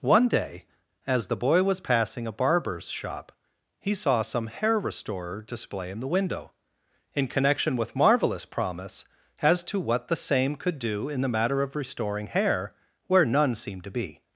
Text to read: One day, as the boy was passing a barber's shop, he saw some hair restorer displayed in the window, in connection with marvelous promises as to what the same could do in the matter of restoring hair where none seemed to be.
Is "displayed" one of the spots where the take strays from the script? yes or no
yes